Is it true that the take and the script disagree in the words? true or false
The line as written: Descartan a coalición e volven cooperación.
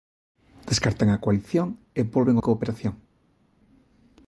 false